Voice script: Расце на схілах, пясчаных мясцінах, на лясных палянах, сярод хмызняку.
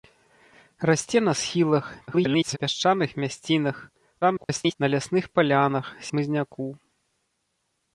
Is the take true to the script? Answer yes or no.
no